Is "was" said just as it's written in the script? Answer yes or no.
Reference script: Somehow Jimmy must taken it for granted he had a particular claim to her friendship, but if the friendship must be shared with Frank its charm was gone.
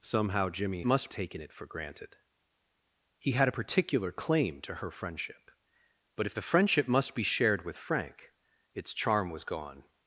yes